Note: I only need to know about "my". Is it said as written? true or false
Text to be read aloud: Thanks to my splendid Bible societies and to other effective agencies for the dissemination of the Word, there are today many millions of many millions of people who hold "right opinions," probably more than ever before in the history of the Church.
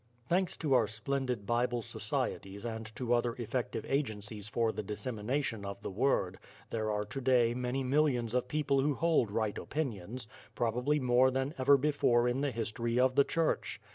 false